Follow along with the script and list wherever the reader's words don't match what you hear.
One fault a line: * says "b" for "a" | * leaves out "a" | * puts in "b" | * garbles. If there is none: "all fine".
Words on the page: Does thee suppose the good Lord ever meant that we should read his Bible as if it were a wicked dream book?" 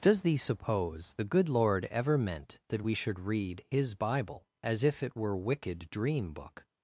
* leaves out "a"